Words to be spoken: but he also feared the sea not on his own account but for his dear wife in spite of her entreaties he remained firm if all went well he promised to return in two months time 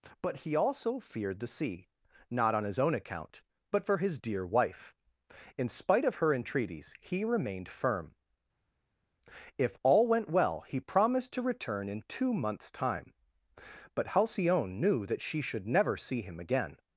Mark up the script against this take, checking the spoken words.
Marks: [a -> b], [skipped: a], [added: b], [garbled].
but he also feared the sea not on his own account but for his dear wife in spite of her entreaties he remained firm if all went well he promised to return in two months time [added: but halcyone knew that she should never see him again]